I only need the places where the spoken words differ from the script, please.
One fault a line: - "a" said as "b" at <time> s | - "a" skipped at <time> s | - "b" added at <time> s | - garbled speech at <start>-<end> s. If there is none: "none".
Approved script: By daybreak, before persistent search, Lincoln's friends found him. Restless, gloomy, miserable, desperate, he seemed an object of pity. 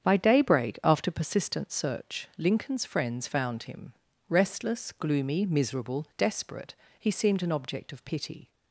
- "before" said as "after" at 0.8 s